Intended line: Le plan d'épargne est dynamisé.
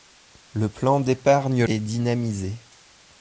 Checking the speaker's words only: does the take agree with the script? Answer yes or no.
yes